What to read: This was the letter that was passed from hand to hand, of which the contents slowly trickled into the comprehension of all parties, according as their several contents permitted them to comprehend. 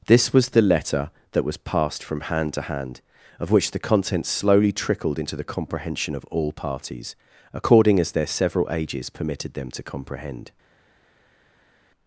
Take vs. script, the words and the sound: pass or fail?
fail